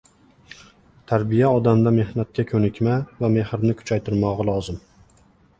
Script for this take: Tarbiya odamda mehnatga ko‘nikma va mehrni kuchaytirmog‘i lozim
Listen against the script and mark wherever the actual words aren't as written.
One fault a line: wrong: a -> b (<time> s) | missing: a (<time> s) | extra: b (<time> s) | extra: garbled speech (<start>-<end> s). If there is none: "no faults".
no faults